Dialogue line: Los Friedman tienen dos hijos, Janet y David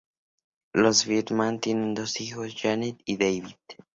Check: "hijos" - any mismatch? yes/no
no